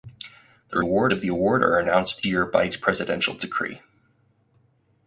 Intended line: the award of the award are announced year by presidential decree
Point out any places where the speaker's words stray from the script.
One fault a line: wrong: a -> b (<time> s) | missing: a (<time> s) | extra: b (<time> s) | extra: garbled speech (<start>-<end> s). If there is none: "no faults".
no faults